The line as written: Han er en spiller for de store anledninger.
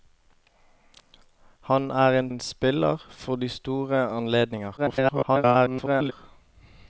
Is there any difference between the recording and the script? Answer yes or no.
yes